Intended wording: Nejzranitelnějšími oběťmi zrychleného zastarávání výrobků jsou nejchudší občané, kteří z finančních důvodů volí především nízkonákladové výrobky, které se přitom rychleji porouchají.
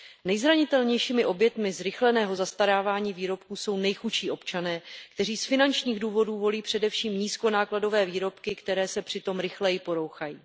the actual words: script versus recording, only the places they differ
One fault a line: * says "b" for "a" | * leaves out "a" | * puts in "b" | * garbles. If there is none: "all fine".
all fine